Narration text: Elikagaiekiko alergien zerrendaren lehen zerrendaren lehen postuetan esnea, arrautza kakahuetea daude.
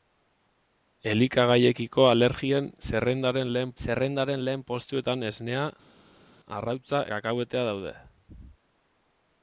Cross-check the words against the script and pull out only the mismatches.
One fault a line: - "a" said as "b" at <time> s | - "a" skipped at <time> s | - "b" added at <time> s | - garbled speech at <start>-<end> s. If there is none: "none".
none